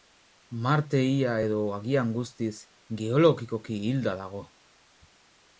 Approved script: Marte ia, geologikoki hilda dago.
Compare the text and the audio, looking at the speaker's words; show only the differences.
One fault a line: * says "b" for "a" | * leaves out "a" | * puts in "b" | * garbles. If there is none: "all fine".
* puts in "edo agian guztiz"